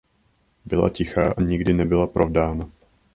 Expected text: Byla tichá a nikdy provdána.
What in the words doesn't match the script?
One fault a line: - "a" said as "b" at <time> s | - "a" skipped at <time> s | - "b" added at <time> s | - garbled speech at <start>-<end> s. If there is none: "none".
- "nebyla" added at 1.7 s